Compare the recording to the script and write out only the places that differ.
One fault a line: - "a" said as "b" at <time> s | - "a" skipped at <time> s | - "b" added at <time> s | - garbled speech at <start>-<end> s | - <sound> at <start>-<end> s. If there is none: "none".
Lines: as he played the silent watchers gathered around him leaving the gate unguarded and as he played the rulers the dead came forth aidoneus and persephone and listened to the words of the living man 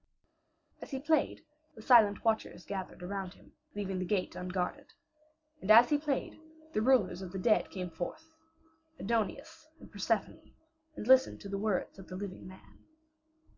- "of" added at 7.2 s